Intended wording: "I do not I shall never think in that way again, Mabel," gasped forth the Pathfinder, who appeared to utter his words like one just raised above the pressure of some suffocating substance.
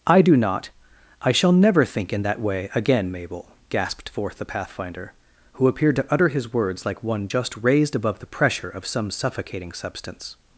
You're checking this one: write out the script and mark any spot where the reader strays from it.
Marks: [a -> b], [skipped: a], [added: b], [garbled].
"I do not I shall never think in that way again, Mabel," gasped forth the Pathfinder, who appeared to utter his words like one just raised above the pressure of some suffocating substance.